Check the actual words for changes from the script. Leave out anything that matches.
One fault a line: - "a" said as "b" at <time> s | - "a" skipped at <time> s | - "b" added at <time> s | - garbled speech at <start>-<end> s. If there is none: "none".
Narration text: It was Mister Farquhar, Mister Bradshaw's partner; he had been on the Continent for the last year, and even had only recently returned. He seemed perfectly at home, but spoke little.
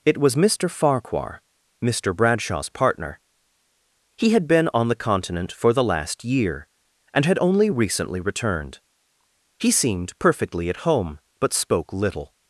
- "even" skipped at 7.2 s